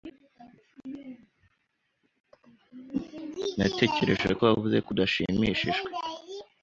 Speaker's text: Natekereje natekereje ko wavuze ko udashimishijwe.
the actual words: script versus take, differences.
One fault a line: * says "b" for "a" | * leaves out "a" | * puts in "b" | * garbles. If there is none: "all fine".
* leaves out "natekereje"